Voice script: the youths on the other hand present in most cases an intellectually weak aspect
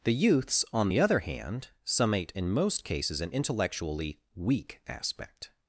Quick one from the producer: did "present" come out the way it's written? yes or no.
no